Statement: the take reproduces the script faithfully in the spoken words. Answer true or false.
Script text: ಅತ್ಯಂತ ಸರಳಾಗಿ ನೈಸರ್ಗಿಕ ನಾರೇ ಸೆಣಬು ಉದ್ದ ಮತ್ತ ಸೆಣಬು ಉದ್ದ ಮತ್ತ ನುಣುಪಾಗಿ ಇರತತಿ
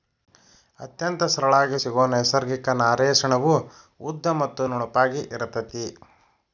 false